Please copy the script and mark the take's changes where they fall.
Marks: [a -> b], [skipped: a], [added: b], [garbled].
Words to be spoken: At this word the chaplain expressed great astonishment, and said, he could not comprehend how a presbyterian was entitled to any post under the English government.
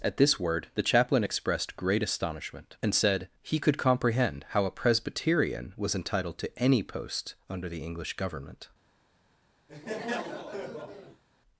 At this word the chaplain expressed great astonishment, and said, he could [skipped: not] comprehend how a presbyterian was entitled to any post under the English government.